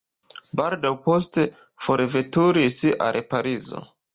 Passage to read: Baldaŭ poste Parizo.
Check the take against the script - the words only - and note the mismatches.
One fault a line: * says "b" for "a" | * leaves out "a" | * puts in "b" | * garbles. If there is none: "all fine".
* puts in "forveturis al"